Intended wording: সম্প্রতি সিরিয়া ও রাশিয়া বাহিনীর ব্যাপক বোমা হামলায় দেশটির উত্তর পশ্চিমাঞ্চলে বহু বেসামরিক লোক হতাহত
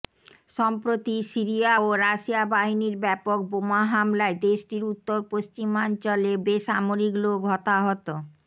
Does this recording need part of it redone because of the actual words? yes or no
yes